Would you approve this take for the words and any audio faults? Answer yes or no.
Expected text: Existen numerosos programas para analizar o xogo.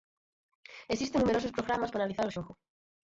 yes